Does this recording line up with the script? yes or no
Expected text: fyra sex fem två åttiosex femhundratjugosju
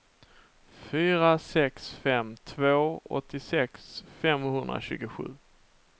yes